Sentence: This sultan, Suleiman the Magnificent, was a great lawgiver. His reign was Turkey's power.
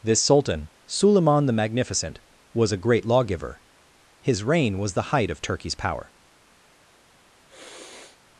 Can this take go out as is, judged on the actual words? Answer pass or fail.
fail